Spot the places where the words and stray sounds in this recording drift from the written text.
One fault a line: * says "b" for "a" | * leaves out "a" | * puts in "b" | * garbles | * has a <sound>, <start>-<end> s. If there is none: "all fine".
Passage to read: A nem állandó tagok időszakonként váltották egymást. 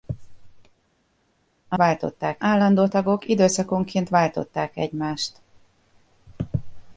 * says "váltották" for "nem"